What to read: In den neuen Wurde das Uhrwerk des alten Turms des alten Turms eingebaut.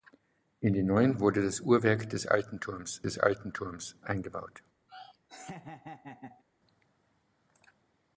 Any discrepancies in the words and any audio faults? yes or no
yes